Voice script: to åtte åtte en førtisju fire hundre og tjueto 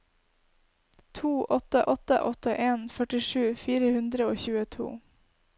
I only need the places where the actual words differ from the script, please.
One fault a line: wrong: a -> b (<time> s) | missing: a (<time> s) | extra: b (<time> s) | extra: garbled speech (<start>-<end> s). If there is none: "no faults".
extra: åtte (2.2 s)